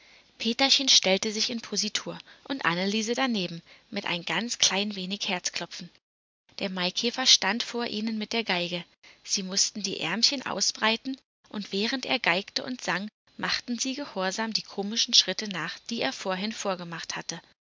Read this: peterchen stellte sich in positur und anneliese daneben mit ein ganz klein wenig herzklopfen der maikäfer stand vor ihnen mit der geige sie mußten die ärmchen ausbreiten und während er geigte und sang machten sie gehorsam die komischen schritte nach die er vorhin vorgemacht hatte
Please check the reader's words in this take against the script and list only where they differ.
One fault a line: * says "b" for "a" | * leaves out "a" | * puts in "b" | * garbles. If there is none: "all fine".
all fine